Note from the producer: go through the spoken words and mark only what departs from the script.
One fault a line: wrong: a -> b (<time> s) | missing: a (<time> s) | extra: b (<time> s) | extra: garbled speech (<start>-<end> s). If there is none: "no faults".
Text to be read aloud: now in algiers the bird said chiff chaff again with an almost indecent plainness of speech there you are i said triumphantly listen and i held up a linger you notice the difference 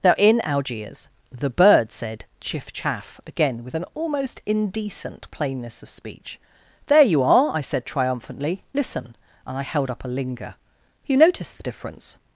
no faults